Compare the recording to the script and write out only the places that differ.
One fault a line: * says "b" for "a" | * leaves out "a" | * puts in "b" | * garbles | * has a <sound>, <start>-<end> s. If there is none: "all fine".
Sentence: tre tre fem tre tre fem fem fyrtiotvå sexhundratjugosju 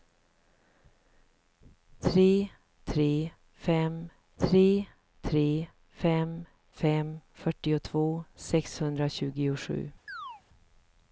* has a chirp, 10.1-10.4 s